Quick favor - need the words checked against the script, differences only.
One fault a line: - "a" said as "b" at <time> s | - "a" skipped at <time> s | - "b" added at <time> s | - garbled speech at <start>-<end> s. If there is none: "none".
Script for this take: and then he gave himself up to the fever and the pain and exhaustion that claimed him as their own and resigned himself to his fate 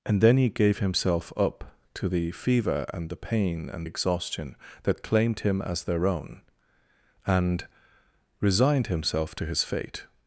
none